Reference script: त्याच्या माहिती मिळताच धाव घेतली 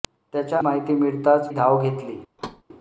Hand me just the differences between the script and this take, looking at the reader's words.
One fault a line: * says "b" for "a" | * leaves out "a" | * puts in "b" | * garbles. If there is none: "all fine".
all fine